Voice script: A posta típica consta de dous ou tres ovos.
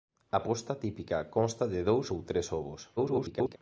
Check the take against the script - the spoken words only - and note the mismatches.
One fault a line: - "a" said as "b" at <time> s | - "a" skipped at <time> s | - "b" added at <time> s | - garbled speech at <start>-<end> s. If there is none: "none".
- garbled speech at 3.0-3.6 s